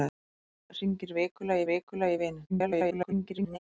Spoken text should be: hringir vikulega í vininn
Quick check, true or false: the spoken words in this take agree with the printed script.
false